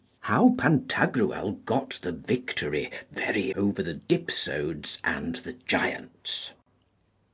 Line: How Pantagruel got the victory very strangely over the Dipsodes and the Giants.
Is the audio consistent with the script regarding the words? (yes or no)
no